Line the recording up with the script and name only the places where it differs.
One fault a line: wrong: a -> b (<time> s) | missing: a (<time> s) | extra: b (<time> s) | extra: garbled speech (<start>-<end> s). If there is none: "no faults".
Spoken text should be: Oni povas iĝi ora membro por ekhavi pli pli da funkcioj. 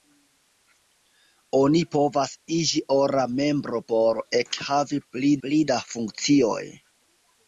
no faults